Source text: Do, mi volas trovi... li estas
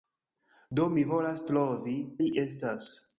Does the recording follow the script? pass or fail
pass